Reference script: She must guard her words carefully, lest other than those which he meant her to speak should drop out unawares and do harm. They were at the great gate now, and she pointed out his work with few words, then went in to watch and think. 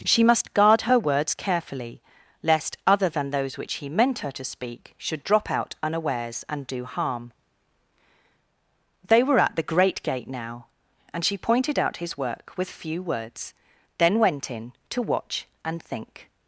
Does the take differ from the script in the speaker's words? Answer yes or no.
no